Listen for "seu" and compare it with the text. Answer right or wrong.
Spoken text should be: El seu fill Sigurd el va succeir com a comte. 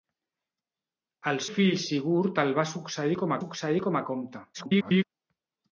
wrong